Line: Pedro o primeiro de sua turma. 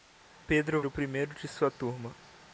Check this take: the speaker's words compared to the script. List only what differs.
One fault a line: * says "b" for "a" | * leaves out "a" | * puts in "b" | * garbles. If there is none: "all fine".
all fine